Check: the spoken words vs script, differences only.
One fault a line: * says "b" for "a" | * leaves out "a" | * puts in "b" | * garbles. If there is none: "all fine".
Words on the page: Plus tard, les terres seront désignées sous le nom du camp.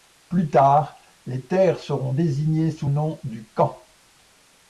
* leaves out "le"